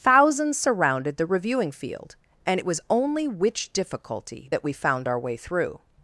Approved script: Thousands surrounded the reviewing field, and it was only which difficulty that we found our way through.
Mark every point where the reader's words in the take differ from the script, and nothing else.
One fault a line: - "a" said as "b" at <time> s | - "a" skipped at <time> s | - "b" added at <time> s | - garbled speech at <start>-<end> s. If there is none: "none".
none